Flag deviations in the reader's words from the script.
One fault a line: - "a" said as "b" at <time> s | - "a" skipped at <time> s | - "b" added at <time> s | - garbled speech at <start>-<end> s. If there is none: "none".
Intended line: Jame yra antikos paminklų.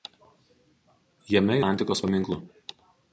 - "yra" skipped at 1.6 s